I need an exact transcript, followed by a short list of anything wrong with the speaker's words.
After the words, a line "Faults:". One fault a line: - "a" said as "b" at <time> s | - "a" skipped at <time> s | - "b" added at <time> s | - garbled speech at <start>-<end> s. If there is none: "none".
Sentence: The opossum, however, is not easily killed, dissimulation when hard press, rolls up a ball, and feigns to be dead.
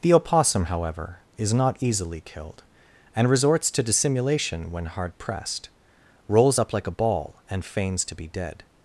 The opossum, however, is not easily killed, and resorts to dissimulation when hard pressed, rolls up like a ball, and feigns to be dead.
Faults:
- "and resorts to" added at 3.1 s
- "press" said as "pressed" at 5.2 s
- "like" added at 6.7 s